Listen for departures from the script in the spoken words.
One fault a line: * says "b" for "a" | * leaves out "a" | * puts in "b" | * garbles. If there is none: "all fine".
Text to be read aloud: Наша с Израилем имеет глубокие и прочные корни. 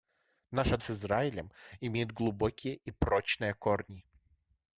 all fine